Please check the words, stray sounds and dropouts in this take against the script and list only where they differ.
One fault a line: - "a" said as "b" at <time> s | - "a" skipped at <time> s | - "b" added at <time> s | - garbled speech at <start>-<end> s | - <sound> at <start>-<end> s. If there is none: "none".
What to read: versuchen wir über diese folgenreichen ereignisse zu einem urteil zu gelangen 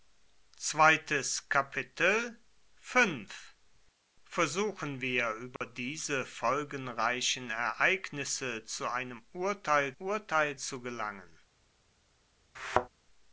- dropout at 5.6-5.6 s
- "urteil" added at 10.0 s
- thud at 12.5-12.9 s